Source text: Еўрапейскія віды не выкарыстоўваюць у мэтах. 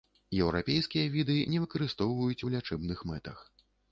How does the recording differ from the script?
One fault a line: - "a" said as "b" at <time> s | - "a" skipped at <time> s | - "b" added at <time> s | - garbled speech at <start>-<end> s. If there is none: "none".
- "лячэбных" added at 2.5 s